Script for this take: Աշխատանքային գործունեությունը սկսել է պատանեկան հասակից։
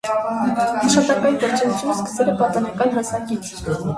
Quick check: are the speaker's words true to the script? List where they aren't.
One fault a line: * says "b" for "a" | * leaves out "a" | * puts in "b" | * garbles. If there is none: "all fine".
all fine